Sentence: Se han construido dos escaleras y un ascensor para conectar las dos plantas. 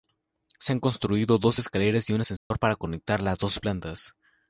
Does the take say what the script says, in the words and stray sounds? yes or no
no